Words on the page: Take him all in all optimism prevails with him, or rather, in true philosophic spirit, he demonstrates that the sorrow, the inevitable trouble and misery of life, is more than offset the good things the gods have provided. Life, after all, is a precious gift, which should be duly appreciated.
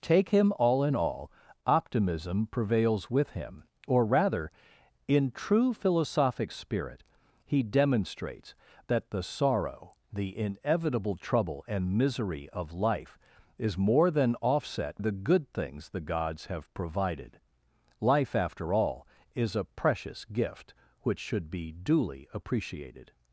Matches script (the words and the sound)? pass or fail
pass